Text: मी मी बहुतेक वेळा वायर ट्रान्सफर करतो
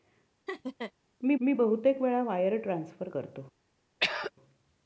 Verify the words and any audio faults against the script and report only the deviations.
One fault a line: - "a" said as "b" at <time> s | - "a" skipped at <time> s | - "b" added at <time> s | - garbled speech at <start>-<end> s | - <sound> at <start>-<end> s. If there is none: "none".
- laugh at 0.5-0.9 s
- throat clearing at 4.0-4.3 s